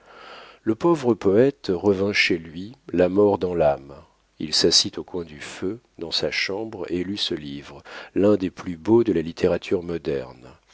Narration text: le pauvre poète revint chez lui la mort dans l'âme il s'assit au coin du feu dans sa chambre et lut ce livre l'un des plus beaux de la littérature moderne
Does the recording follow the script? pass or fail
pass